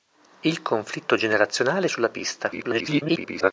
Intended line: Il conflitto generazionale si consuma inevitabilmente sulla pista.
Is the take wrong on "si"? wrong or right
wrong